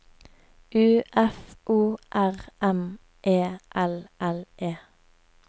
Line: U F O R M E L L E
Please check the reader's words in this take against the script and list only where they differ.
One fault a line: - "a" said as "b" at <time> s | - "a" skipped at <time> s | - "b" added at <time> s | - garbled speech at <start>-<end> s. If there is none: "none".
none